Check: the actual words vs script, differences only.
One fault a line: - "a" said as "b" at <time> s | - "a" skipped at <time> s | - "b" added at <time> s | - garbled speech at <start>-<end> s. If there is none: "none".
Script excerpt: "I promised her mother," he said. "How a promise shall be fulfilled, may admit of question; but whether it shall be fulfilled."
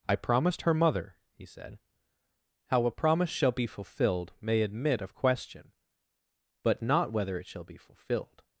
- "not" added at 6.8 s